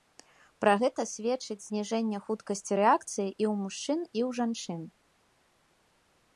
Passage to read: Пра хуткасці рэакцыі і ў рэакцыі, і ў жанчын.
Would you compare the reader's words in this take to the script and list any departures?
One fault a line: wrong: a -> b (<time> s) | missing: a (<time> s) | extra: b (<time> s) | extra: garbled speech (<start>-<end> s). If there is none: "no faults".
extra: гэта сведчыць зніжэнне (0.8 s)
wrong: рэакцыі -> мужчын (3.6 s)